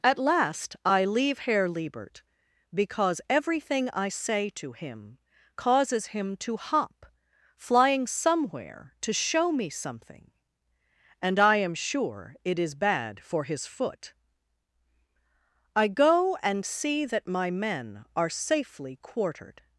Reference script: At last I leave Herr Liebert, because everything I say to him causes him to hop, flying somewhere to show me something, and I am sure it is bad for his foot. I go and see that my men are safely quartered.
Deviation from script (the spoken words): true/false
false